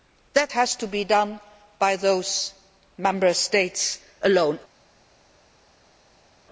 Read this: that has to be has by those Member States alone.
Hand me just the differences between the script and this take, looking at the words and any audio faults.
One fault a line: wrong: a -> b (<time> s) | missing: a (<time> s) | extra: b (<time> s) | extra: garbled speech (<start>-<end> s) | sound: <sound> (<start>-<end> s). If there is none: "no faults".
wrong: has -> done (1.0 s)